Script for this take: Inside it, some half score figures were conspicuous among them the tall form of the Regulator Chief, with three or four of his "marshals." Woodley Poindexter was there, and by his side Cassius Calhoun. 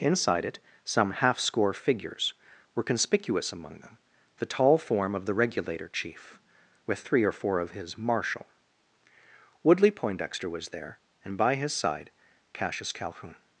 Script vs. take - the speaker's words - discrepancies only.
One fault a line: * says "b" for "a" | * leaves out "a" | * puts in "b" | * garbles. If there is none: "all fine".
* says "marshal" for "marshals"